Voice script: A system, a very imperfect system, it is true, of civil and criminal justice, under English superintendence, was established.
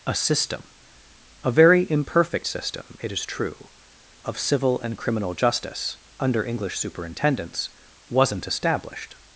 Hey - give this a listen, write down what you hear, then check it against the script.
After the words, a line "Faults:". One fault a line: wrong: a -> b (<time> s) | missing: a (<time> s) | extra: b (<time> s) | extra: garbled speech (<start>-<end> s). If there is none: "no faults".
A system, a very imperfect system, it is true, of civil and criminal justice, under English superintendence, wasn't established.
Faults:
wrong: was -> wasn't (8.1 s)